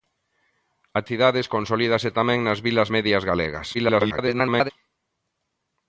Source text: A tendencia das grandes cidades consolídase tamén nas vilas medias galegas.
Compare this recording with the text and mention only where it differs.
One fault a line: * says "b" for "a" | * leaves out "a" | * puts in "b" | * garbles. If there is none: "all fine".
* leaves out "tendencia das grandes"
* garbles